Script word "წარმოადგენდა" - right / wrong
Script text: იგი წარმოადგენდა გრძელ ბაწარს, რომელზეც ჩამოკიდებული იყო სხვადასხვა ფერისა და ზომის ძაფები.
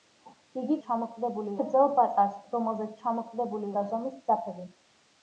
wrong